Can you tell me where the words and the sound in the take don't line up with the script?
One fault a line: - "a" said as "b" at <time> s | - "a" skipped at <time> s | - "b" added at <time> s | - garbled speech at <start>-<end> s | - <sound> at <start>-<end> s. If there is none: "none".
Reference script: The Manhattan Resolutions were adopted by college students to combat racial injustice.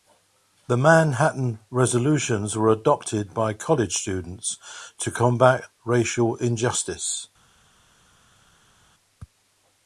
none